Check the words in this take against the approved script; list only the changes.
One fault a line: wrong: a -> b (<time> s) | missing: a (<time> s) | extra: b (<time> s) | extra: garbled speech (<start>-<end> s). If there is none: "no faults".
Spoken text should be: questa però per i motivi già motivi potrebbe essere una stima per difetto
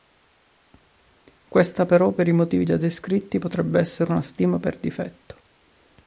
wrong: motivi -> descritti (2.8 s)